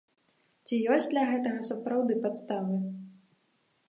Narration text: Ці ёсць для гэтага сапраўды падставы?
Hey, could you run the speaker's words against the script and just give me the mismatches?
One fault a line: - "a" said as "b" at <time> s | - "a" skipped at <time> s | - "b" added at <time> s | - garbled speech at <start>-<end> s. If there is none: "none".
none